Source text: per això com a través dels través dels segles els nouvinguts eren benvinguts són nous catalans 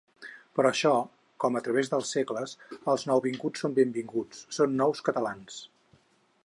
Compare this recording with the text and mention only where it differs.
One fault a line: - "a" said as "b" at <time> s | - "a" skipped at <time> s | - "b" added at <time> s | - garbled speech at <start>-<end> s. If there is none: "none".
- "través dels" skipped at 2.1 s
- "eren" said as "són" at 3.6 s